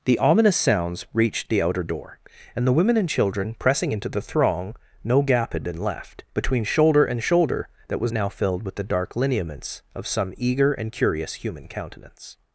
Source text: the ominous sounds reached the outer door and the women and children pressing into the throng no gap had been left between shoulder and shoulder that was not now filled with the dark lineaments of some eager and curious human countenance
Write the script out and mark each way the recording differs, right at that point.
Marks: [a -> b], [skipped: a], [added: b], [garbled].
the ominous sounds reached the outer door and the women and children pressing into the throng no gap had been left between shoulder and shoulder that was [skipped: not] now filled with the dark lineaments of some eager and curious human countenance